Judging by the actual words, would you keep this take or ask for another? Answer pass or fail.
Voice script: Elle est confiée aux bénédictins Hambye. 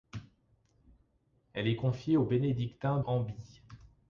pass